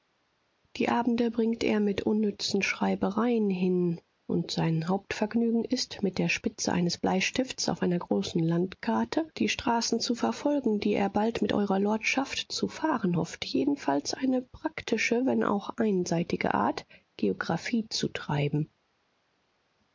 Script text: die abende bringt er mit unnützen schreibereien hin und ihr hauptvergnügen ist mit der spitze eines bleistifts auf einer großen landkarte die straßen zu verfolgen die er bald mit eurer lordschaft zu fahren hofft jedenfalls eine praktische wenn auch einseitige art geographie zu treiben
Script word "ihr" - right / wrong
wrong